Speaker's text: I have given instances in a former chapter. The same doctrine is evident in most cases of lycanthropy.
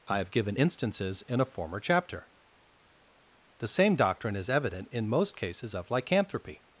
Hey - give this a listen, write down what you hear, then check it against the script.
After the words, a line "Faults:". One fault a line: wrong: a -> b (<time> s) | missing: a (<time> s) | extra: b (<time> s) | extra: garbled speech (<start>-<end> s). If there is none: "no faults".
I have given instances in a former chapter. The same doctrine is evident in most cases of lycanthropy.
Faults:
no faults